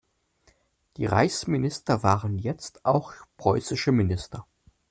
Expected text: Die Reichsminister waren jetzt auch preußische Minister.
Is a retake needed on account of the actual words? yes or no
no